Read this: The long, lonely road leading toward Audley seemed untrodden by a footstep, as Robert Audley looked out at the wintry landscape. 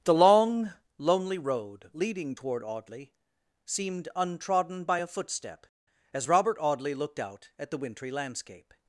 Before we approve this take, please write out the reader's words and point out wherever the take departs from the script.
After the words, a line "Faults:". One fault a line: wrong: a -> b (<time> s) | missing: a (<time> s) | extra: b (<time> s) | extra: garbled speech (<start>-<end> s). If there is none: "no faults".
The long, lonely road leading toward Audley seemed untrodden by a footstep, as Robert Audley looked out at the wintry landscape.
Faults:
no faults